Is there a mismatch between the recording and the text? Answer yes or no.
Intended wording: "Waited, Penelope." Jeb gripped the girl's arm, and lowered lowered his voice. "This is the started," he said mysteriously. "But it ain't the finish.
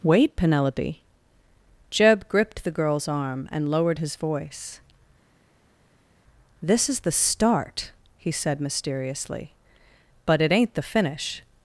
yes